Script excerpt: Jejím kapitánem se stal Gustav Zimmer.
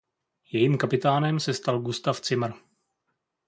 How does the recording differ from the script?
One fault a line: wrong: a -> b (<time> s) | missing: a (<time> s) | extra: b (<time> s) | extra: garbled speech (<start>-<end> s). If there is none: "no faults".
no faults